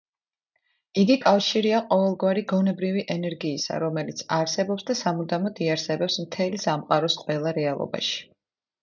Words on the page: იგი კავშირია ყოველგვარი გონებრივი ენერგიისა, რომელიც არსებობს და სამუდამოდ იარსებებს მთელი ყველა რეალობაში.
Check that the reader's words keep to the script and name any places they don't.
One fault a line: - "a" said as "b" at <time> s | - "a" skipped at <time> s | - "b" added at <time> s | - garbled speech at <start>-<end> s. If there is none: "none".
- "სამყაროს" added at 6.7 s